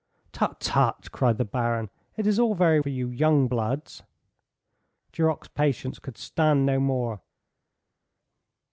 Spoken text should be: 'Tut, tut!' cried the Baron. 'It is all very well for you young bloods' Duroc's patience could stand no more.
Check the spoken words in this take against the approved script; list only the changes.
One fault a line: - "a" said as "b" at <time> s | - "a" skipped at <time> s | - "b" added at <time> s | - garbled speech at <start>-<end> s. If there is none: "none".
- "well" skipped at 2.8 s